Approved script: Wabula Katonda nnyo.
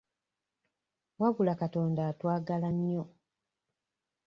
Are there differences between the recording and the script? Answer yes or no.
yes